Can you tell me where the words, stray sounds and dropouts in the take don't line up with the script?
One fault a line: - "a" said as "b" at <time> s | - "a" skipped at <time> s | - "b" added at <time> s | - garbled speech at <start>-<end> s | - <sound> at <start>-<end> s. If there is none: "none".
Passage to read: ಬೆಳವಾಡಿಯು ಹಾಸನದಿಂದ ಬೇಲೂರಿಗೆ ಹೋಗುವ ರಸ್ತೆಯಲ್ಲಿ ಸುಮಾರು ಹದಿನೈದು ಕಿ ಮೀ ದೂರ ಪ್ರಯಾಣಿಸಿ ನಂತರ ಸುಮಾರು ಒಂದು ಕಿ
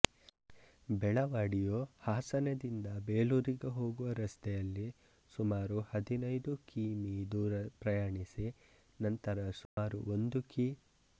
- dropout at 9.7-9.8 s